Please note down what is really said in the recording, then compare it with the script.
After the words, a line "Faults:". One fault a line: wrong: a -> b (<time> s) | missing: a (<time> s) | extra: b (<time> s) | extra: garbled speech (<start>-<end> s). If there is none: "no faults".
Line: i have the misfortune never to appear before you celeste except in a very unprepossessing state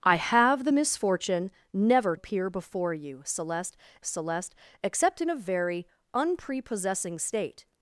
i have the misfortune never appear before you celeste celeste except in a very unprepossessing state
Faults:
missing: to (2.1 s)
extra: celeste (4.0 s)